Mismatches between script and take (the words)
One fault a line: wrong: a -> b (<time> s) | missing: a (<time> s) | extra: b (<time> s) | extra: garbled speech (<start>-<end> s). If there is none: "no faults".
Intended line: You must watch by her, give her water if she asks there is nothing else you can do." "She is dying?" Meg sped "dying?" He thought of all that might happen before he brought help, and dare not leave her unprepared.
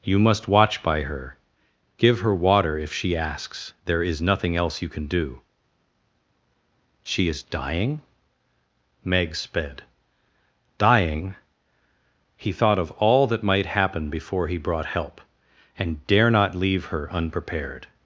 no faults